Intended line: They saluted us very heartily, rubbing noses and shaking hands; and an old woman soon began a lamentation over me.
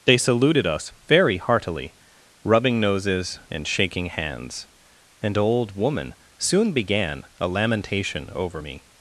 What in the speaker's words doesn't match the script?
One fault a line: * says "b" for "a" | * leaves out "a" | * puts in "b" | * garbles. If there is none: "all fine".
* leaves out "and"